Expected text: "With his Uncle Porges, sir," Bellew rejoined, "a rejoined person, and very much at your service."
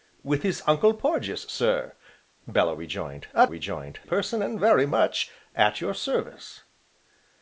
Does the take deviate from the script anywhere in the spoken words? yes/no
no